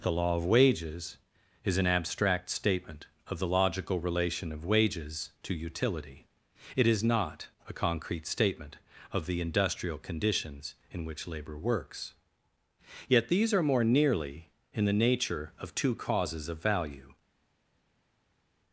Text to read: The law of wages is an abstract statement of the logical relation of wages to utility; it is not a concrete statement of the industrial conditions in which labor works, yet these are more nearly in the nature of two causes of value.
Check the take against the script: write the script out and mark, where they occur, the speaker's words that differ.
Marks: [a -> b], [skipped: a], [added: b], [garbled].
The law of wages is an abstract statement of the logical relation of wages to utility; it is not a concrete statement of the industrial conditions in which labor works, yet these are more nearly in the nature of two causes of value.